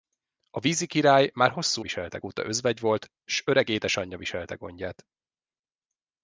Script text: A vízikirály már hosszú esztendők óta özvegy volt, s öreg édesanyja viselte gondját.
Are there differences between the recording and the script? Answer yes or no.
yes